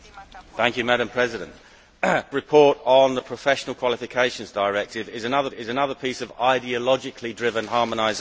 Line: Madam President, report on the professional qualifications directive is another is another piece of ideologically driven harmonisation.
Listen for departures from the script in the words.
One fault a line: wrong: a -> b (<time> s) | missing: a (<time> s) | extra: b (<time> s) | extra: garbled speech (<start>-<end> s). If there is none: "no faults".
no faults